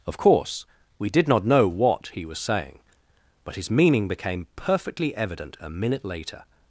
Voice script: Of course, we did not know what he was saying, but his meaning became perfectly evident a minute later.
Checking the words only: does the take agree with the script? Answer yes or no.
yes